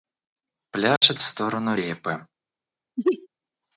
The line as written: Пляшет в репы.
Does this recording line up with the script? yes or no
no